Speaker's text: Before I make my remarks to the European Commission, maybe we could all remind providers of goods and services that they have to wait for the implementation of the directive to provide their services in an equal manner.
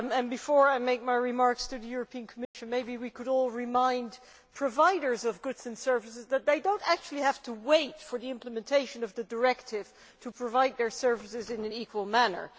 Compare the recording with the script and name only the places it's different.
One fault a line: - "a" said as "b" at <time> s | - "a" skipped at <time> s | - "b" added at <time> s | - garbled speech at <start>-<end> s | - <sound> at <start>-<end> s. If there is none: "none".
- dropout at 2.4-2.5 s
- "do not actually" added at 6.6 s